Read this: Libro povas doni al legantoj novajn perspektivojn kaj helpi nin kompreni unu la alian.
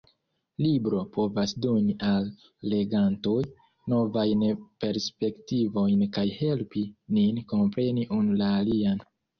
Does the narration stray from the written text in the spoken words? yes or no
no